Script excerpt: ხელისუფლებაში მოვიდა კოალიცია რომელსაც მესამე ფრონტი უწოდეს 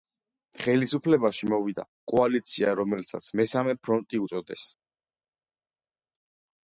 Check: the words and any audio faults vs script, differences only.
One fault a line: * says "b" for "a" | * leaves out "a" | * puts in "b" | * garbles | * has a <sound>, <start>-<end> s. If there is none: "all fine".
all fine